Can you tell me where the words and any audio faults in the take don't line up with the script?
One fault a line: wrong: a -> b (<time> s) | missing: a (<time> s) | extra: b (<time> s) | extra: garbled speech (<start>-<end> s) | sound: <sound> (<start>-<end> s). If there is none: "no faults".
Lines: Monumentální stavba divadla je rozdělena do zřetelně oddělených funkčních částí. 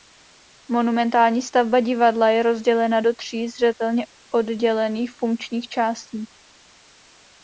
extra: tří (3.1 s)